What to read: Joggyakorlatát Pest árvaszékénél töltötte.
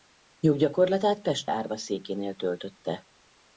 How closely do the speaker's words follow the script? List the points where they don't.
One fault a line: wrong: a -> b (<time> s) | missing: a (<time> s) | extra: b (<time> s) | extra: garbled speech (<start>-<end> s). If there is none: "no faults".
no faults